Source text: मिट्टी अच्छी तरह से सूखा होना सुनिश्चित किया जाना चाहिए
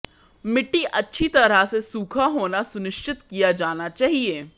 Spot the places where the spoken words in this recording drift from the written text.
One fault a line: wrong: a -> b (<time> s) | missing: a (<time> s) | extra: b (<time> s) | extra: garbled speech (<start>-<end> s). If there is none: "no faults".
no faults